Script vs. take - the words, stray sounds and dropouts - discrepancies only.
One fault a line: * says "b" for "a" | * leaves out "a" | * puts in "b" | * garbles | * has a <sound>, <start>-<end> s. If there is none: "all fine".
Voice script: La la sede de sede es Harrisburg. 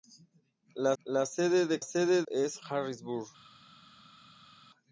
all fine